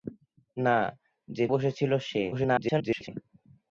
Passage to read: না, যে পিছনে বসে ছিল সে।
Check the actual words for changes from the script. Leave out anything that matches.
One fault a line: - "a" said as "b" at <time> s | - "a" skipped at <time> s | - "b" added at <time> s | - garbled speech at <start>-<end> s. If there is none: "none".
- "পিছনে" skipped at 1.4 s
- garbled speech at 2.3-3.1 s